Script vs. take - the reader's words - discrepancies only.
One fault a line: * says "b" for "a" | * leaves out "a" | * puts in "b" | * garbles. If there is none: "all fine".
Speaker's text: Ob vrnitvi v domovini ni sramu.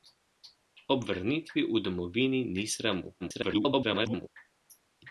* garbles